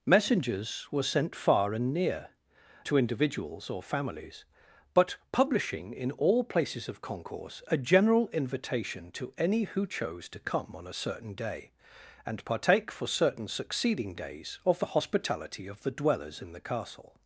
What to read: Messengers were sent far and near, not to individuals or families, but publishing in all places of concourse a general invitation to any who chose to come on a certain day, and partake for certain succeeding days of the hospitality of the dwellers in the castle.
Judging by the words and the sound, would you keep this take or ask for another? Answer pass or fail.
fail